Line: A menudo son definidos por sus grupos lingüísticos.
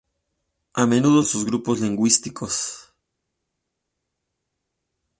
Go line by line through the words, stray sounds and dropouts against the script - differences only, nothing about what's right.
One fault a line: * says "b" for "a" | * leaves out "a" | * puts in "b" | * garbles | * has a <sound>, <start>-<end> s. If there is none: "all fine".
* leaves out "son definidos por"